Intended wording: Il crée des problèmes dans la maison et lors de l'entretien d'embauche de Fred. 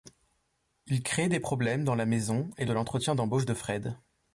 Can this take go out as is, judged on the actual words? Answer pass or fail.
fail